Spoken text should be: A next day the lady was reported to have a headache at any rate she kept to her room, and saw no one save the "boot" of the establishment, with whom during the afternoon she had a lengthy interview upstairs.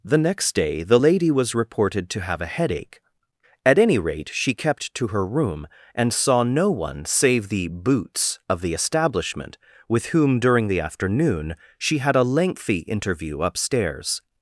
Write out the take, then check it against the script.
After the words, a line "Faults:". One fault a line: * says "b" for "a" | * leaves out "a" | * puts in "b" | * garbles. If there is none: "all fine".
The next day the lady was reported to have a headache at any rate she kept to her room, and saw no one save the "boots" of the establishment, with whom during the afternoon she had a lengthy interview upstairs.
Faults:
* says "The" for "A"
* says "boots" for "boot"